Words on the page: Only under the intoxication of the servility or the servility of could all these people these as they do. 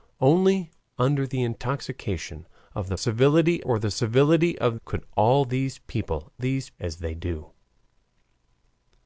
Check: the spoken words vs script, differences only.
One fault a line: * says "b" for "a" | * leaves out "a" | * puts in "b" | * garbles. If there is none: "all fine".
all fine